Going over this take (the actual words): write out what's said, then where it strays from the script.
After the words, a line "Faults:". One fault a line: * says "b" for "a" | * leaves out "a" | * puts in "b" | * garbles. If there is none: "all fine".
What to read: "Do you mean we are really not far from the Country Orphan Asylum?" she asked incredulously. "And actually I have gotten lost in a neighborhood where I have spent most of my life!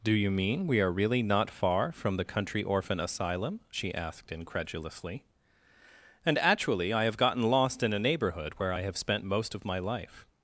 "Do you mean we are really not far from the Country Orphan Asylum?" she asked incredulously. "And actually I have gotten lost in a neighborhood where I have spent most of my life!
Faults:
all fine